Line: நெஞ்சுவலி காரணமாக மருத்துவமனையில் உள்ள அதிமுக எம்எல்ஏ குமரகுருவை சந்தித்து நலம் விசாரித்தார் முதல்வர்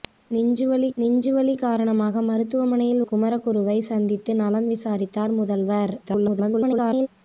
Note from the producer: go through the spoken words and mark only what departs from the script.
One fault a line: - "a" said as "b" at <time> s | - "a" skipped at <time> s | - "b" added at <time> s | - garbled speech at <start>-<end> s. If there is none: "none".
- "நெஞ்சுவலி" added at 1.0 s
- "உள்ள அதிமுக எம்எல்ஏ" skipped at 3.0 s
- garbled speech at 6.0-7.1 s